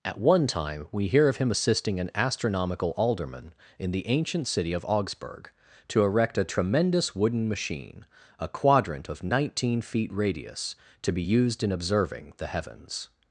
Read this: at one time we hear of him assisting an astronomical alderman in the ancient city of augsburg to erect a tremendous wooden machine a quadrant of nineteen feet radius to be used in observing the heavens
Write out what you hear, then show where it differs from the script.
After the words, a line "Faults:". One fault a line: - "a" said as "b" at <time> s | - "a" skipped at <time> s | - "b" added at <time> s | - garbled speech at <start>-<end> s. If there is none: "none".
at one time we hear of him assisting an astronomical alderman in the ancient city of augsburg to erect a tremendous wooden machine a quadrant of nineteen feet radius to be used in observing the heavens
Faults:
none